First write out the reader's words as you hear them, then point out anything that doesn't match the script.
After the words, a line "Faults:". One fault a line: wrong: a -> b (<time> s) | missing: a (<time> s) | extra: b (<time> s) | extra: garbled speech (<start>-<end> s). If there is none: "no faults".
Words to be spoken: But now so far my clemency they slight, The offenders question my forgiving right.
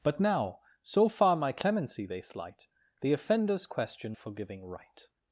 But now so far my clemency they slight, The offenders question forgiving right.
Faults:
missing: my (4.2 s)